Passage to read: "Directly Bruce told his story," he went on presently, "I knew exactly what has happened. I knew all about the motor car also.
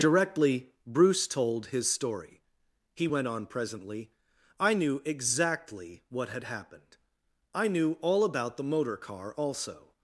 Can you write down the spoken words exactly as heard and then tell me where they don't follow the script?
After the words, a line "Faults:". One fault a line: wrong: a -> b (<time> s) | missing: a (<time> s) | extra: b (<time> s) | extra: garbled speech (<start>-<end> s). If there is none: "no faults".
"Directly Bruce told his story," he went on presently, "I knew exactly what had happened. I knew all about the motor car also.
Faults:
wrong: has -> had (6.3 s)